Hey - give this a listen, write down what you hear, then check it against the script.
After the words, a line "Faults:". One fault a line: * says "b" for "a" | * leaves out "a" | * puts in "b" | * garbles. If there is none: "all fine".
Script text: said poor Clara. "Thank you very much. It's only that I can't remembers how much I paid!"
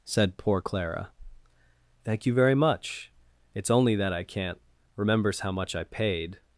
said poor Clara. "Thank you very much. It's only that I can't remembers how much I paid!"
Faults:
all fine